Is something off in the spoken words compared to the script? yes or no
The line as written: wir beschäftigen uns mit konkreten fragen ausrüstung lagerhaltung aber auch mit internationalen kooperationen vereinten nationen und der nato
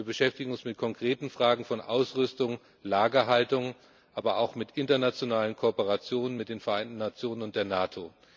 yes